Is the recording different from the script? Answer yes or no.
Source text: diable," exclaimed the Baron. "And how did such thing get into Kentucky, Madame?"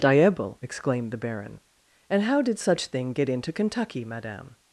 no